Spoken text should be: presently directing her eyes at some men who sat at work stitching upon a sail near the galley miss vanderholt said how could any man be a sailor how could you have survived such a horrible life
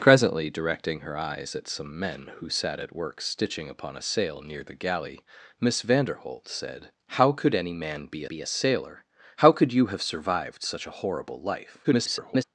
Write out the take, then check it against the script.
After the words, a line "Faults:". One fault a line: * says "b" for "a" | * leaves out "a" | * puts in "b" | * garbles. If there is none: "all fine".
presently directing her eyes at some men who sat at work stitching upon a sail near the galley miss vanderholt said how could any man be be a sailor how could you have survived such a horrible life [garbled]
Faults:
* puts in "be"
* garbles